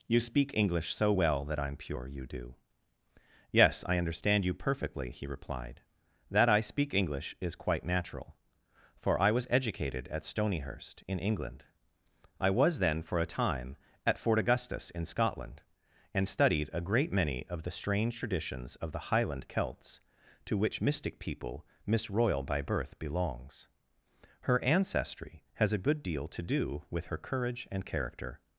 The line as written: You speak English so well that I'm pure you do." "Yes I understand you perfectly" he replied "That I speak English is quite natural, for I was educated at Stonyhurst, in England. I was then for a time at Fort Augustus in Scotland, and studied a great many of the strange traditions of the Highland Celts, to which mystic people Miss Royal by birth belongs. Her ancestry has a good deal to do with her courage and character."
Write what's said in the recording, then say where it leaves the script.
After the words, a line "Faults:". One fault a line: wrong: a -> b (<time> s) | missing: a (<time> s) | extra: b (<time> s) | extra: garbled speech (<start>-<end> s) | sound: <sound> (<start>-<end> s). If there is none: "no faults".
You speak English so well that I'm pure you do." "Yes I understand you perfectly" he replied "That I speak English is quite natural, for I was educated at Stonyhurst, in England. I was then for a time at Fort Augustus in Scotland, and studied a great many of the strange traditions of the Highland Celts, to which mystic people Miss Royal by birth belongs. Her ancestry has a good deal to do with her courage and character."
Faults:
no faults